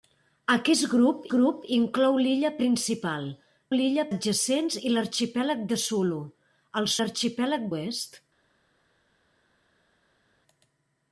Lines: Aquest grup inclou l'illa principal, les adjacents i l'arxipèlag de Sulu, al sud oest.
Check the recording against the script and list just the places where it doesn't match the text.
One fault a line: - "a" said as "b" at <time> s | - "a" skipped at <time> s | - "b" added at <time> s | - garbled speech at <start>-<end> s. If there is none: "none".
- "grup" added at 1.3 s
- "les" said as "l'illa" at 3.7 s
- "sud" said as "l'arxipèlag" at 7.0 s